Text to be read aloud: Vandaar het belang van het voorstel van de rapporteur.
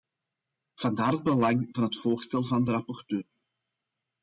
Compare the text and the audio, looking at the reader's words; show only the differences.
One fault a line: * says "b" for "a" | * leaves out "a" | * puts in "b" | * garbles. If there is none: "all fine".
all fine